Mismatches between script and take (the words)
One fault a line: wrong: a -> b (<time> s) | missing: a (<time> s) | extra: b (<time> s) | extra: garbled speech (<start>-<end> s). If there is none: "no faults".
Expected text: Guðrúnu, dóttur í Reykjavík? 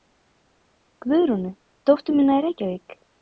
extra: mína (2.2 s)